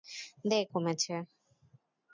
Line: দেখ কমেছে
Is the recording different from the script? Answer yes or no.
no